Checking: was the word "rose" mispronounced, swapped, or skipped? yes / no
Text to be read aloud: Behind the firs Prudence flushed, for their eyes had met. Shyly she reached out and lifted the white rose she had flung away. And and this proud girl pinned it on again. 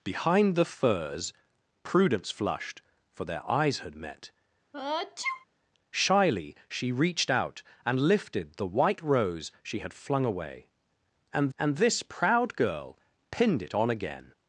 no